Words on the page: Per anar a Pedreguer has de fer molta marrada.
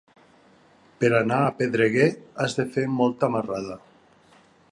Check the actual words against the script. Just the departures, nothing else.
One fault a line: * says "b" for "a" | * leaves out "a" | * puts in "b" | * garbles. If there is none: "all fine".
all fine